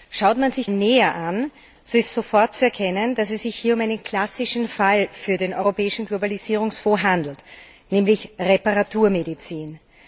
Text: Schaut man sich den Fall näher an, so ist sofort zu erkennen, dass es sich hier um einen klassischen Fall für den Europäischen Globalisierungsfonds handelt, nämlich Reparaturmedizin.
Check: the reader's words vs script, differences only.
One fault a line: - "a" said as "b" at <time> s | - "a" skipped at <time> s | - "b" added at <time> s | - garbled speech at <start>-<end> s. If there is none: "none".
- "den Fall" skipped at 0.7 s